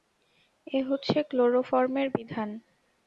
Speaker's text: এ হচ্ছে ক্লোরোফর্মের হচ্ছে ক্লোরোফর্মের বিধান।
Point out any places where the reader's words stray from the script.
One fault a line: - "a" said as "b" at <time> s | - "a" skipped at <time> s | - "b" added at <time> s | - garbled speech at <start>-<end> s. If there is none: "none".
- "হচ্ছে ক্লোরোফর্মের" skipped at 2.1 s